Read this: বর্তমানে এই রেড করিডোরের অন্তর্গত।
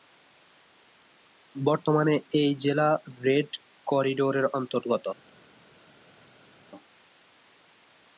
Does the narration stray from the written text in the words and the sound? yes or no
yes